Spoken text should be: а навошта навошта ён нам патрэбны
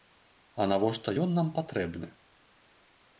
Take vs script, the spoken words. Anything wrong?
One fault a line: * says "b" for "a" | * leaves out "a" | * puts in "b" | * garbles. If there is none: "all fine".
* leaves out "навошта"